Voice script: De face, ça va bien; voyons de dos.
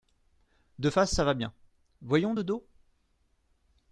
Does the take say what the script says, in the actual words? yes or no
yes